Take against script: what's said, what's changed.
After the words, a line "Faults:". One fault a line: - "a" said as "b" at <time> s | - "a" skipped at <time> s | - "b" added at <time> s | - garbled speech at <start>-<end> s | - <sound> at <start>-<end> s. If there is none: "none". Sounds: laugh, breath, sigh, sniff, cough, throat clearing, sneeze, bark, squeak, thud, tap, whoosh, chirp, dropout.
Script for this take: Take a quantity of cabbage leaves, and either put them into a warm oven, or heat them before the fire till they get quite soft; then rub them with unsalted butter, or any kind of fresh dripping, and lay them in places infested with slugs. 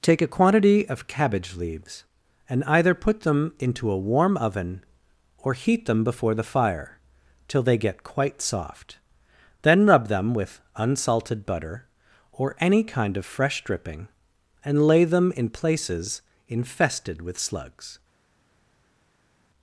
Take a quantity of cabbage leaves, and either put them into a warm oven, or heat them before the fire till they get quite soft; then rub them with unsalted butter, or any kind of fresh dripping, and lay them in places infested with slugs.
Faults:
none